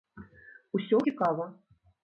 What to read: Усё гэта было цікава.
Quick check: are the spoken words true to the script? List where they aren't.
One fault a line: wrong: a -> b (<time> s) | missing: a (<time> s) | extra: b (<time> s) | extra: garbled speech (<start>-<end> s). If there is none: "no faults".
missing: гэта было (1.0 s)